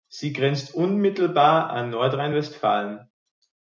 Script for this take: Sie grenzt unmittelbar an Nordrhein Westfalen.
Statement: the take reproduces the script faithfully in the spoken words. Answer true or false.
true